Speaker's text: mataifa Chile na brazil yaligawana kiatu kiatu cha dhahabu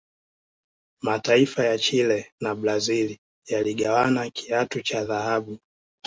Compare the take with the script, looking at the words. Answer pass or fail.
fail